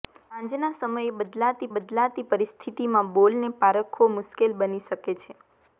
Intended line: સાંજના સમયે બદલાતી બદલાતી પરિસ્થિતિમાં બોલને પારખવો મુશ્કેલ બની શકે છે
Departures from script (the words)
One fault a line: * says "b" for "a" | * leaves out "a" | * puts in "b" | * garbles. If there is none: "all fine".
all fine